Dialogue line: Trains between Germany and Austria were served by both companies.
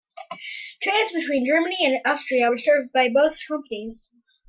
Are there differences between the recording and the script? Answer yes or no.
no